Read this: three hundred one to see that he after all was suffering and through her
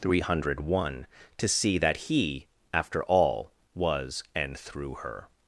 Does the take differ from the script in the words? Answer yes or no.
yes